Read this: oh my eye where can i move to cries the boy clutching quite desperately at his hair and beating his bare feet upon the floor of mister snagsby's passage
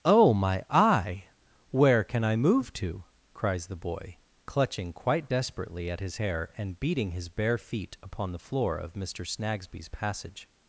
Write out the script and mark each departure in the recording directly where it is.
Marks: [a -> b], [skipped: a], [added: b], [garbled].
oh my eye where can i move to cries the boy clutching quite desperately at his hair and beating his bare feet upon the floor of mister snagsby's passage